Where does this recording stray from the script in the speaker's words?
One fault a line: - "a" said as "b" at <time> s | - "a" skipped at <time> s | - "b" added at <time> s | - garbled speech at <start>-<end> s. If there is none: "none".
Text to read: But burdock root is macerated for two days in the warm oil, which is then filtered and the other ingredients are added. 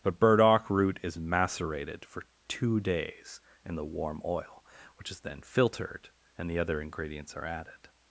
none